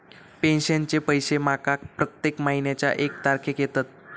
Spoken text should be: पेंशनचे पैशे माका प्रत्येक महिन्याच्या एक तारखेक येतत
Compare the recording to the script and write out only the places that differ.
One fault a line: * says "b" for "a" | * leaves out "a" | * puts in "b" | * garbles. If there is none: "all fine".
all fine